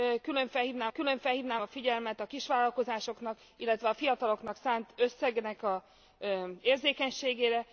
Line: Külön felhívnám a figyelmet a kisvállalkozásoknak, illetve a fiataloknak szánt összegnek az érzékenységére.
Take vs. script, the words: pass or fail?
fail